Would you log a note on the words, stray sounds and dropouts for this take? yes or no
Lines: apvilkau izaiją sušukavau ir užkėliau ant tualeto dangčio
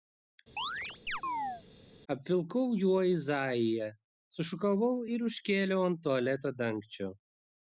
yes